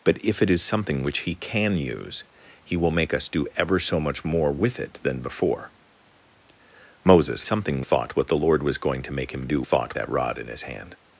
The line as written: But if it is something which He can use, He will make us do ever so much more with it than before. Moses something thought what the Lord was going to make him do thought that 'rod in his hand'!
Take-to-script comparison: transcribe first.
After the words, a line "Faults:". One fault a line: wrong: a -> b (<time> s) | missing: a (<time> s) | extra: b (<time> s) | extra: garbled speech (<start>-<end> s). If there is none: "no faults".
But if it is something which He can use, He will make us do ever so much more with it than before. Moses something thought what the Lord was going to make him do thought that 'rod in his hand'!
Faults:
no faults